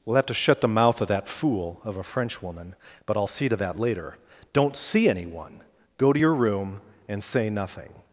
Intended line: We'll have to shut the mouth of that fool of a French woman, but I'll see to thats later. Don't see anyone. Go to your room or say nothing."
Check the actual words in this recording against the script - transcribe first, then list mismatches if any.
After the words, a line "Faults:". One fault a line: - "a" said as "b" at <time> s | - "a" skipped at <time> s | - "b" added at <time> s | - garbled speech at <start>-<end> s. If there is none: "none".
We'll have to shut the mouth of that fool of a French woman, but I'll see to that later. Don't see anyone. Go to your room and say nothing."
Faults:
- "thats" said as "that" at 3.6 s
- "or" said as "and" at 7.1 s